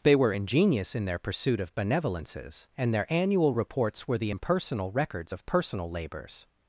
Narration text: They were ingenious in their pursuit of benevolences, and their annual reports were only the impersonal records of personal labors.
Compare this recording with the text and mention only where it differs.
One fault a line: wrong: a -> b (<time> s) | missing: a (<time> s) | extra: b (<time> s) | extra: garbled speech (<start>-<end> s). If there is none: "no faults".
missing: only (4.2 s)